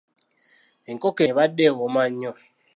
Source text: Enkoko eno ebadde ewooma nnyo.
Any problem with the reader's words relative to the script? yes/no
yes